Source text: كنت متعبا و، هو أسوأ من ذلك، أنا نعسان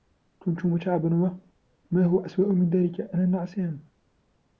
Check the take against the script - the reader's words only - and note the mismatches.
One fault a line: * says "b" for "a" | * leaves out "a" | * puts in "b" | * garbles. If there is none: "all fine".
* puts in "ما"